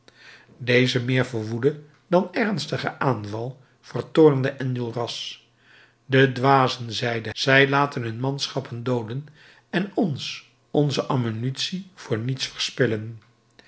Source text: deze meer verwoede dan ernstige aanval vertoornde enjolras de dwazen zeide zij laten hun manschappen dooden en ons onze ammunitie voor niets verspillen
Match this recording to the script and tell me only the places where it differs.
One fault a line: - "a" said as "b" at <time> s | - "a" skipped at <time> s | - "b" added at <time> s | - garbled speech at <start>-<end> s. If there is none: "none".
none